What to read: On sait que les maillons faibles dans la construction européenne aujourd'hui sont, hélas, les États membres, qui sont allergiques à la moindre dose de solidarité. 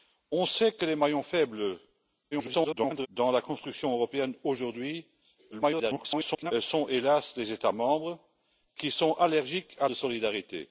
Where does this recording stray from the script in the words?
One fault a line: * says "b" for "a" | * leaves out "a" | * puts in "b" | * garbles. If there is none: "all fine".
* garbles
* garbles
* leaves out "la moindre dose"